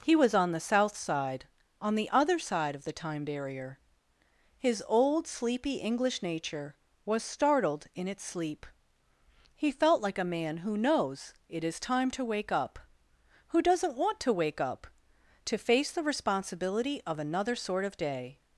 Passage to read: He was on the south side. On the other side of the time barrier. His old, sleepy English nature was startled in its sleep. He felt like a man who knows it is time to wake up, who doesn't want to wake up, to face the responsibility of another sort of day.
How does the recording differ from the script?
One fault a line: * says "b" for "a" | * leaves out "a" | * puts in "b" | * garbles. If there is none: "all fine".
all fine